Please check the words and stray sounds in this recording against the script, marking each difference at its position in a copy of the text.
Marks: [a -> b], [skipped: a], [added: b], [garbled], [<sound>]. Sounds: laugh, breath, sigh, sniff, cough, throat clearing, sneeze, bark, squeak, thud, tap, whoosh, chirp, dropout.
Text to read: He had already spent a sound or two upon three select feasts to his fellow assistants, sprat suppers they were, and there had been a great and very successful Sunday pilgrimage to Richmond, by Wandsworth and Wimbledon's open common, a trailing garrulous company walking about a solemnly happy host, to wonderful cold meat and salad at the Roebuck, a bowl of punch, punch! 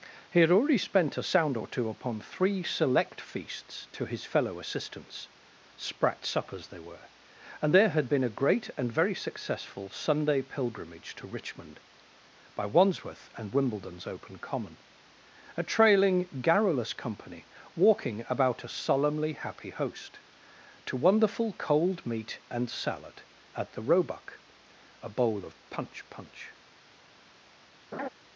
He had already spent a sound or two upon three select feasts to his fellow assistants, sprat suppers they were, and there had been a great and very successful Sunday pilgrimage to Richmond, by Wandsworth and Wimbledon's open common, a trailing garrulous company walking about a solemnly happy host, to wonderful cold meat and salad at the Roebuck, a bowl of punch, punch! [laugh]